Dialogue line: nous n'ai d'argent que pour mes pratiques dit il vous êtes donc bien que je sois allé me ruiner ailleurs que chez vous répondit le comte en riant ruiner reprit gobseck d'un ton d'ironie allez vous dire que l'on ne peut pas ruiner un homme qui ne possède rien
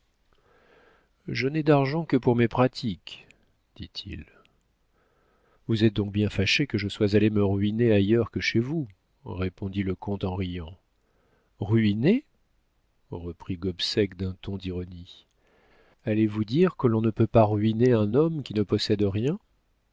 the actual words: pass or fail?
fail